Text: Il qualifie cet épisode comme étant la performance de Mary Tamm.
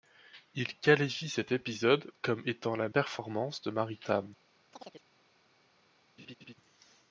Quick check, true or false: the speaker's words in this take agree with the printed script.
true